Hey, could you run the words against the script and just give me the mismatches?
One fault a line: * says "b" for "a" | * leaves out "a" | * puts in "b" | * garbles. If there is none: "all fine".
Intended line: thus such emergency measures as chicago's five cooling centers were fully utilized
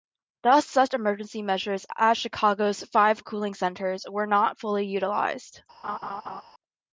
* puts in "not"